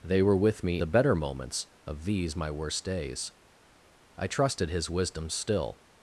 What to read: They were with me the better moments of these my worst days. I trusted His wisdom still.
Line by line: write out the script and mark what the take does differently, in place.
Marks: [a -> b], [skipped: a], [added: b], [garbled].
They were with me the better moments of these my worst days. I trusted His wisdom still.